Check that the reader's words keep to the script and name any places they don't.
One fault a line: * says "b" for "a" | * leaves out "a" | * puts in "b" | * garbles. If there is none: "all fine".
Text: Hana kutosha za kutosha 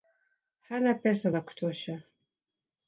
* says "pesa" for "kutosha"